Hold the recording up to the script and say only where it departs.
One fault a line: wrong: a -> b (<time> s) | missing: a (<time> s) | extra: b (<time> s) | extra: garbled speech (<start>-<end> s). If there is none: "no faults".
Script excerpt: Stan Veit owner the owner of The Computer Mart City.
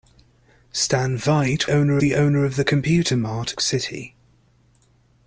no faults